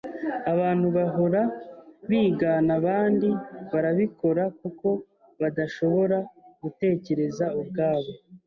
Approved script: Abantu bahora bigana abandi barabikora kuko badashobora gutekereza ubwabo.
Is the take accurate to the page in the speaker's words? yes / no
yes